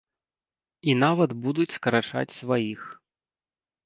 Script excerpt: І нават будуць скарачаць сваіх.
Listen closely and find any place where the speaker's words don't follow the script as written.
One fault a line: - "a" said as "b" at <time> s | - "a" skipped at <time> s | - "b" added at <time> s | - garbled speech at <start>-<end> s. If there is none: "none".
none